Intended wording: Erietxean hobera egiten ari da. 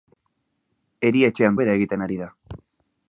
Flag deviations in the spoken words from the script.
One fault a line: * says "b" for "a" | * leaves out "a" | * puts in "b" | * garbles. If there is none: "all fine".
all fine